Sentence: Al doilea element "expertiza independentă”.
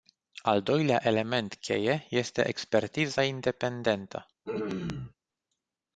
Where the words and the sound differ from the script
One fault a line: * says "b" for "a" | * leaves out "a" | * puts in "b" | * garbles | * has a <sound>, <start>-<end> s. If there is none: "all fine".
* puts in "cheie este"
* has a throat clearing, 4.4-5.1 s